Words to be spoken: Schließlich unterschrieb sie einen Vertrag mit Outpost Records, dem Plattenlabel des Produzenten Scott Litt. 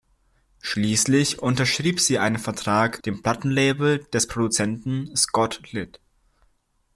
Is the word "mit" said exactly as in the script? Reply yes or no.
no